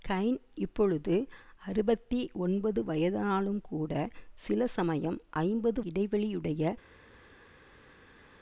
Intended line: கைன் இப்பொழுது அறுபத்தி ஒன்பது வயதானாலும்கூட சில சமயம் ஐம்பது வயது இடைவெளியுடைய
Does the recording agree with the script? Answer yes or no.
no